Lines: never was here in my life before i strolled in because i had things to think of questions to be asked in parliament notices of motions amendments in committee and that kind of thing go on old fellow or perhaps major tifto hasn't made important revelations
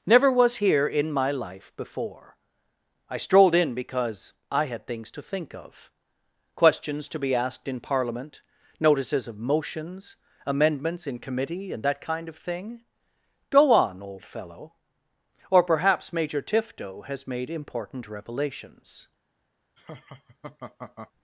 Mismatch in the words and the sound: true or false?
true